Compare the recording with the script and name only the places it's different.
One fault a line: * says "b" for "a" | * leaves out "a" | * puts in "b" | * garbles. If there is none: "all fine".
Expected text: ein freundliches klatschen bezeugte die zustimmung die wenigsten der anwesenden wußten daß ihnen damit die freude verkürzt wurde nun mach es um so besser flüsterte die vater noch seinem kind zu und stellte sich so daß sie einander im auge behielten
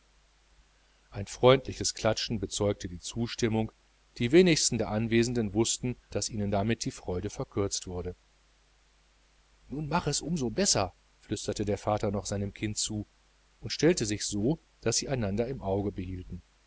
* says "der" for "die"